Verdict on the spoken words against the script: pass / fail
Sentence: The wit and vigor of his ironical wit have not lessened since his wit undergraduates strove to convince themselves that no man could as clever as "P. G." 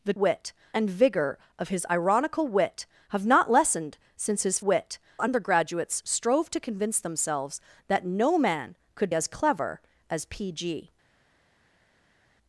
pass